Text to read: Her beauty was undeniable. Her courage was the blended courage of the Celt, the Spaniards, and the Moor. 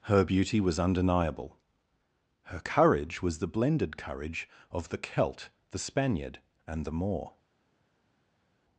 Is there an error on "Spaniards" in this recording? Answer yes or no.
yes